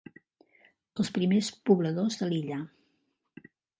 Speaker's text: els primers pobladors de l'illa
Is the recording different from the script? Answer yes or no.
no